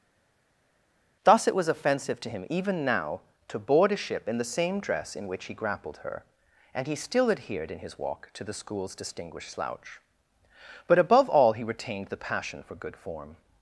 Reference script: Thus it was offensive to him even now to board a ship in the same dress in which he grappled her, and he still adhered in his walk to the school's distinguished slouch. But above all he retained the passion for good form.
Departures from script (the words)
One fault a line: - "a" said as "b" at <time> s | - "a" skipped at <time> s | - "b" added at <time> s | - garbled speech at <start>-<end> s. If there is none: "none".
none